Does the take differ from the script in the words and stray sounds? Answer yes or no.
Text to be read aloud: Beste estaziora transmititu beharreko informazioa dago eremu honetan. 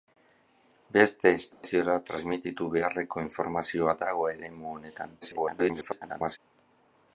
yes